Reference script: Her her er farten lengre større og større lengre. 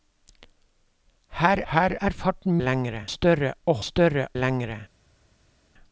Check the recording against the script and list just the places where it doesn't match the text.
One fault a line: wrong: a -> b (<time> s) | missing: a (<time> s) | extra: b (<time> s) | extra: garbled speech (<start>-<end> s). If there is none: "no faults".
no faults